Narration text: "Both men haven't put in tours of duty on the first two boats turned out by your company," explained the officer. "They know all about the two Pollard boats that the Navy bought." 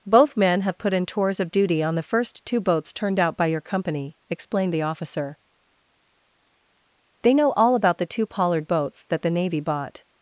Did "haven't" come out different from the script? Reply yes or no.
yes